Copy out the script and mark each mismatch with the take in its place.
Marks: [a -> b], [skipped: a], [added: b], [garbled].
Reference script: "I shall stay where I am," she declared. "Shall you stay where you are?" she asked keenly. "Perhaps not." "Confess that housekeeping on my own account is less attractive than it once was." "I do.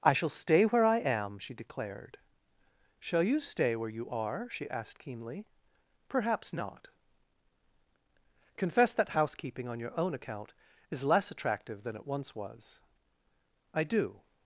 "I shall stay where I am," she declared. "Shall you stay where you are?" she asked keenly. "Perhaps not." "Confess that housekeeping on [my -> your] own account is less attractive than it once was." "I do.